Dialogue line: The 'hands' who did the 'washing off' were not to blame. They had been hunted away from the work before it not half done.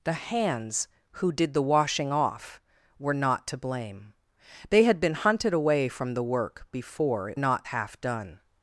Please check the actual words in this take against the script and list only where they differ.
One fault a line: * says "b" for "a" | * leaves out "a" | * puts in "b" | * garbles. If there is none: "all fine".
all fine